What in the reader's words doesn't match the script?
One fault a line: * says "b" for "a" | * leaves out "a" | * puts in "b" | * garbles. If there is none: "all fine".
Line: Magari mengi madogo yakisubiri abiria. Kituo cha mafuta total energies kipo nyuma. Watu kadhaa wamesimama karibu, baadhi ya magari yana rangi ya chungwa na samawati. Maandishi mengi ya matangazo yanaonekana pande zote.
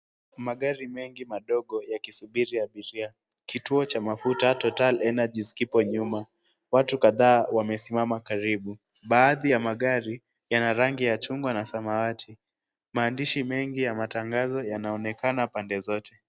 all fine